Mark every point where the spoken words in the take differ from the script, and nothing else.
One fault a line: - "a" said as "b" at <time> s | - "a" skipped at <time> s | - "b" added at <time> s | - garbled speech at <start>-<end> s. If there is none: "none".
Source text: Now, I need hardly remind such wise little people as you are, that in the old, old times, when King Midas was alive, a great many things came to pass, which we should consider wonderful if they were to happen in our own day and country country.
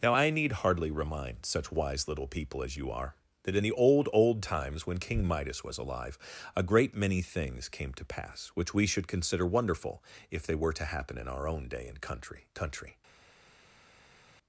none